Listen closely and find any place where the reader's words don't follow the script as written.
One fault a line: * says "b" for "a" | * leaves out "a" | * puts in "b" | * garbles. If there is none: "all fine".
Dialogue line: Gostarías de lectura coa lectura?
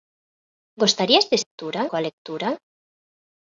all fine